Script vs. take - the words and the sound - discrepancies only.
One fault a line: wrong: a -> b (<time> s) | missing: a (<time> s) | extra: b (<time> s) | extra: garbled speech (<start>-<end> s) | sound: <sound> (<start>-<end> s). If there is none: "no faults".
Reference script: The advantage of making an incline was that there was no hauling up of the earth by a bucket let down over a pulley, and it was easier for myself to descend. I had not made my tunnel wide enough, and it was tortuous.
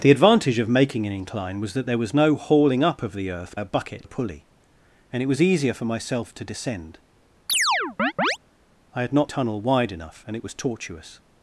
missing: by (3.6 s)
missing: let down over (4.0 s)
sound: chirp (7.5-8.4 s)
missing: made my (9.3 s)